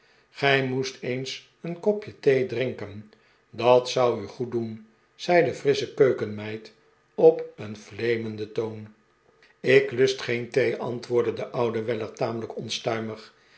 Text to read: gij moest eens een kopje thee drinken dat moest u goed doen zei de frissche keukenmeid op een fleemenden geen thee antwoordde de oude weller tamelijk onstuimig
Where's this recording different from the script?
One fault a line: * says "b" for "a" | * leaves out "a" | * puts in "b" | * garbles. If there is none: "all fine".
* says "zou" for "moest"
* puts in "toon ik lust"